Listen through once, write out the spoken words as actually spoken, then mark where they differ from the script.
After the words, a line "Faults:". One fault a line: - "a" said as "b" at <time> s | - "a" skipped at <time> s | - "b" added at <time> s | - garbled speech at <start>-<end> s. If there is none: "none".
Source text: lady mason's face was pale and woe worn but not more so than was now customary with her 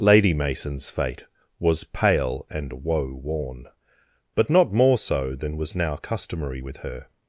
lady mason's fate was pale and woe worn but not more so than was now customary with her
Faults:
- "face" said as "fate" at 0.9 s